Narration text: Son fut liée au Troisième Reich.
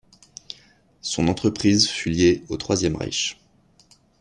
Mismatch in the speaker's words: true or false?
true